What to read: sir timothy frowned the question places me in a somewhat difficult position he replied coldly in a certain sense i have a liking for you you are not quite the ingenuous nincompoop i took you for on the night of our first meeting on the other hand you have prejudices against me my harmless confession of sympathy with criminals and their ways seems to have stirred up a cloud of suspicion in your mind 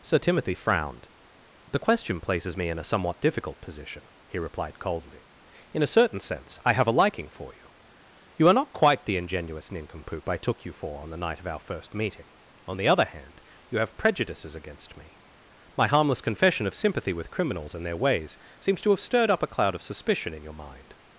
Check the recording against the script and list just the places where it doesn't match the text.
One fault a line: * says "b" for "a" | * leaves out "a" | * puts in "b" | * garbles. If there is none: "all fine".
all fine